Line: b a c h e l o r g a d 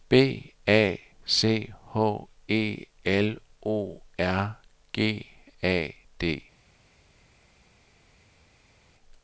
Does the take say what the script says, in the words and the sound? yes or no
yes